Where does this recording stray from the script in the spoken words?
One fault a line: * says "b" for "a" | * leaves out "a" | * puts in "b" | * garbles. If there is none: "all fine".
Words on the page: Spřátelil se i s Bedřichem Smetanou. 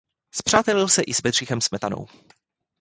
all fine